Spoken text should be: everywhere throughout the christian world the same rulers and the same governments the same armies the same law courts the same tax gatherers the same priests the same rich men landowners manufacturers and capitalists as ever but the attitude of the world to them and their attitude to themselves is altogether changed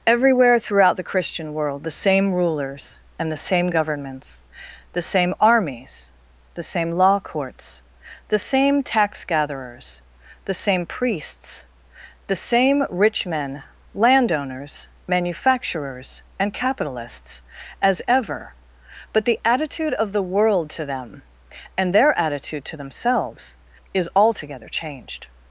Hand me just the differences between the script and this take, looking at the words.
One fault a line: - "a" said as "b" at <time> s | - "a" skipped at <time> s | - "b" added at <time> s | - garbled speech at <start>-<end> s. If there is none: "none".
none